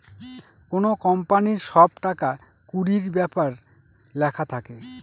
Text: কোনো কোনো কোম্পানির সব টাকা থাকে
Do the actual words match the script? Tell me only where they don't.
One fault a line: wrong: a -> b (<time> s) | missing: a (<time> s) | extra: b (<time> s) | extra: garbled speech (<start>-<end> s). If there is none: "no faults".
missing: কোনো (0.9 s)
extra: কুড়ির ব্যাপার লেখা (2.7 s)